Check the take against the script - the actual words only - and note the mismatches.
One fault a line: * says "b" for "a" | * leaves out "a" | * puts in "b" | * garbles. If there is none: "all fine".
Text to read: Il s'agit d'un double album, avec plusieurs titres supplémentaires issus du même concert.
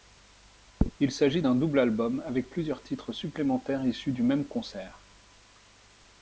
all fine